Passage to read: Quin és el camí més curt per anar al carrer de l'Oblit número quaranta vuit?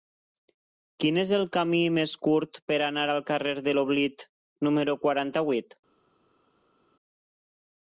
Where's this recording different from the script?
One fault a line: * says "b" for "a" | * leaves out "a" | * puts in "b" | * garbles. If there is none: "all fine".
all fine